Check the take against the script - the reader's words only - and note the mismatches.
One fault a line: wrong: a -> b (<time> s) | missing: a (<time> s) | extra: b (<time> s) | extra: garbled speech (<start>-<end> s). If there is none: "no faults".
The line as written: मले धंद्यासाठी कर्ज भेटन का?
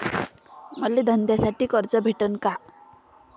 no faults